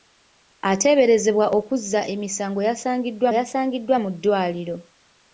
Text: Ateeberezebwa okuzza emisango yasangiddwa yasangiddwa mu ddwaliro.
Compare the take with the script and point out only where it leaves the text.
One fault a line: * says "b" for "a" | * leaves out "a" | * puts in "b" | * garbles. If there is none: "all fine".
all fine